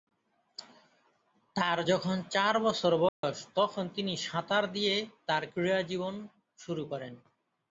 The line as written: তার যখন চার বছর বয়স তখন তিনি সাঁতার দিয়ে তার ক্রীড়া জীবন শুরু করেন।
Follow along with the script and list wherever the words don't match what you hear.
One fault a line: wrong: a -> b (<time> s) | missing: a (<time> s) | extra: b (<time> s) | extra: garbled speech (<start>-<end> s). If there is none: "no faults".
no faults